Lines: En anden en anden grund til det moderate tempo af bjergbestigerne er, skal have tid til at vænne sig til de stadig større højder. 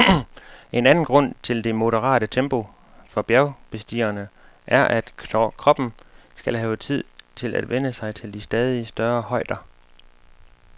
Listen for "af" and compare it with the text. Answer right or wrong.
wrong